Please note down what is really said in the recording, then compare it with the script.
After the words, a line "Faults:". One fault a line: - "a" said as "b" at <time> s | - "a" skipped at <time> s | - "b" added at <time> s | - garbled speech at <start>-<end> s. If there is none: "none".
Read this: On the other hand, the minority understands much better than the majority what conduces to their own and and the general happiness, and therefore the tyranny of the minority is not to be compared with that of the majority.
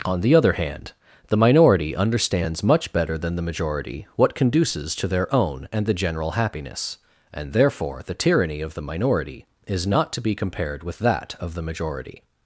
On the other hand, the minority understands much better than the majority what conduces to their own and the general happiness, and therefore the tyranny of the minority is not to be compared with that of the majority.
Faults:
- "and" skipped at 5.8 s